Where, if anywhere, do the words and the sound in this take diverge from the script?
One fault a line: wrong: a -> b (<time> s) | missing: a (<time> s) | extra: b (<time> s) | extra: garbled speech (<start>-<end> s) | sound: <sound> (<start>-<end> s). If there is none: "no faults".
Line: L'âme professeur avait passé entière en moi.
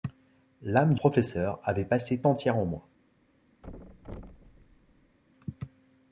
sound: thud (3.6-5.2 s)